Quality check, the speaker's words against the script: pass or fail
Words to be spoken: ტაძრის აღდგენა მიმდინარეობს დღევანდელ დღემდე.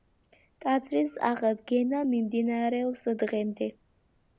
fail